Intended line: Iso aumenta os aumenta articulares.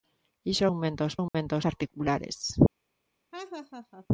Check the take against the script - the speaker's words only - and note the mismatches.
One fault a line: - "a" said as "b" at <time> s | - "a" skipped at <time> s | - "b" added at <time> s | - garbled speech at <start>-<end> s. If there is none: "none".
none